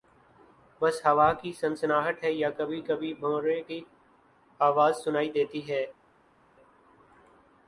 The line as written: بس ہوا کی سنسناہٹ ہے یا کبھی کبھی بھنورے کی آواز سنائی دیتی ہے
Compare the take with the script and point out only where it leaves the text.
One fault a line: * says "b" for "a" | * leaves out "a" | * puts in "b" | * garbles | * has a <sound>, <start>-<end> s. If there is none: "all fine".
all fine